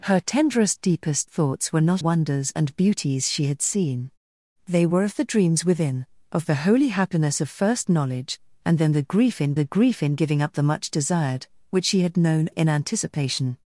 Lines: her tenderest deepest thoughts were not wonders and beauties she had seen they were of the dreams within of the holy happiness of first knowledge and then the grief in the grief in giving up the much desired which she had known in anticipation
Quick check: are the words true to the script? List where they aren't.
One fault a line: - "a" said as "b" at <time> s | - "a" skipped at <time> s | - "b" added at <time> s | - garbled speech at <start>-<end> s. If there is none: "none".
none